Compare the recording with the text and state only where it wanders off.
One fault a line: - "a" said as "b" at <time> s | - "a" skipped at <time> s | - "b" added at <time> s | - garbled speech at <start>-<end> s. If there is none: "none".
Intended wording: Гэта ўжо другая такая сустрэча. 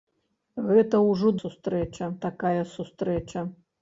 - "другая" said as "сустрэча" at 1.4 s